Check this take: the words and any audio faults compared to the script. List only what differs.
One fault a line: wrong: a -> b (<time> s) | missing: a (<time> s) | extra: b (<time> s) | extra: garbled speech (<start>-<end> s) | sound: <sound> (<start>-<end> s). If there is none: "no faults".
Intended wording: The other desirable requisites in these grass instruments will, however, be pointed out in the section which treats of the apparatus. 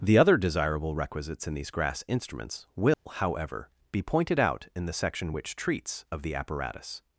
sound: dropout (2.9-3.1 s)